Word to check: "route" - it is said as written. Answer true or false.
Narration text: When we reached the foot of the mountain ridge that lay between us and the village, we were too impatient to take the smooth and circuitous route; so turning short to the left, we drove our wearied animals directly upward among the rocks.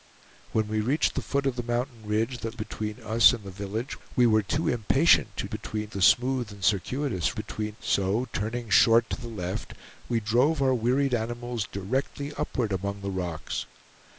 false